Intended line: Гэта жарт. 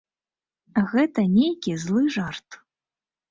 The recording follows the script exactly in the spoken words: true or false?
false